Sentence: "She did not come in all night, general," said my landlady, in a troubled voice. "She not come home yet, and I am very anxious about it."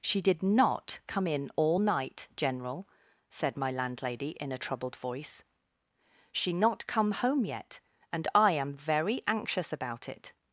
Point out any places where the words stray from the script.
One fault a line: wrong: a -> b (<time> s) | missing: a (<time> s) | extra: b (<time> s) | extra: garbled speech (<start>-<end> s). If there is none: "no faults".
no faults